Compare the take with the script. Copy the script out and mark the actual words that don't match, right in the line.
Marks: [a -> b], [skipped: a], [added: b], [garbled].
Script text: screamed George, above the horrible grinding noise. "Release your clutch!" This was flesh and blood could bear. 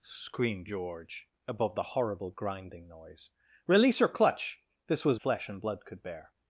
screamed George, above the horrible grinding noise. "Release your clutch!" This was flesh and blood could bear.